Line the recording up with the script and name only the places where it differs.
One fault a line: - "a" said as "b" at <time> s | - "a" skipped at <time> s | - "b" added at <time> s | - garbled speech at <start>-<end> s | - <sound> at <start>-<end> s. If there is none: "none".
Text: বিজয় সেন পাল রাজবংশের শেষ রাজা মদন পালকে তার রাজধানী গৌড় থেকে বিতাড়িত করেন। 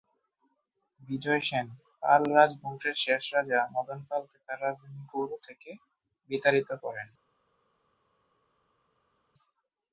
none